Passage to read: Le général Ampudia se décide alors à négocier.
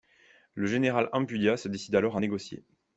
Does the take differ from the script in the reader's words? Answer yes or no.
no